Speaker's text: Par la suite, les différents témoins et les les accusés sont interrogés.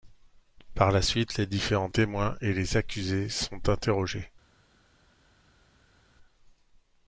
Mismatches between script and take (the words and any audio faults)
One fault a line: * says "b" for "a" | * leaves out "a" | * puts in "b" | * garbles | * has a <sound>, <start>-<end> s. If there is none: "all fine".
* leaves out "les"